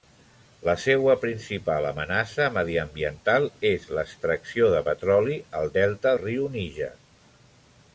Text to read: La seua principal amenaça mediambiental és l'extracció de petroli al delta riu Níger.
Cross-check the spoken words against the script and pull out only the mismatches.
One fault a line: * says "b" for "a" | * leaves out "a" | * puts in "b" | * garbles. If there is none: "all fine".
all fine